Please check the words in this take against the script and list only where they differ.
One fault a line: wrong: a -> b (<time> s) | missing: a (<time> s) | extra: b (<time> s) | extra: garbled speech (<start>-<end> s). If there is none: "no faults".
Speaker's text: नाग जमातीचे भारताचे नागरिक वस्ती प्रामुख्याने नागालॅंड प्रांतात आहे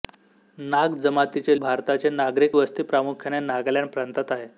no faults